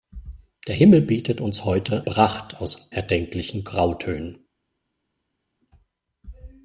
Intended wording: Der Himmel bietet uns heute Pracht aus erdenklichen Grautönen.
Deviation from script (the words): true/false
false